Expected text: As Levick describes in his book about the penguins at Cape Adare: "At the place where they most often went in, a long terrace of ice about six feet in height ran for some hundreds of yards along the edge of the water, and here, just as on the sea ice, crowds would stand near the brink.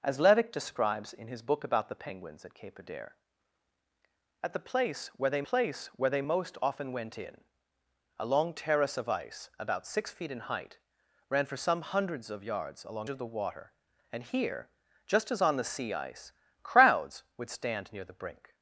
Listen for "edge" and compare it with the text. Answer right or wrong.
wrong